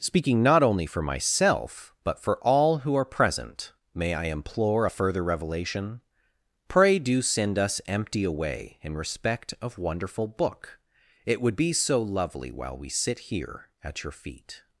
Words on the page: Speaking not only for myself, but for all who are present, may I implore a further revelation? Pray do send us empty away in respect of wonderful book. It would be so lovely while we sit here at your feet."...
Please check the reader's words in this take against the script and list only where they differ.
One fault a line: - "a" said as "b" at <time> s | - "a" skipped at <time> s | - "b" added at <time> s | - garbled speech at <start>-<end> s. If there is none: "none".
none